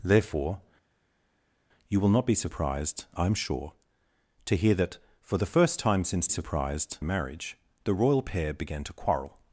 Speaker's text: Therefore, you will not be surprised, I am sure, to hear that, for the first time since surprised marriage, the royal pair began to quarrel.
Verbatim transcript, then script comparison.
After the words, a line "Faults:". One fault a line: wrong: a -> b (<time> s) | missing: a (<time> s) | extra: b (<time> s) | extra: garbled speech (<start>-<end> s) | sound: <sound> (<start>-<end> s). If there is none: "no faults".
Therefore, you will not be surprised, I am sure, to hear that, for the first time since surprised marriage, the royal pair began to quarrel.
Faults:
no faults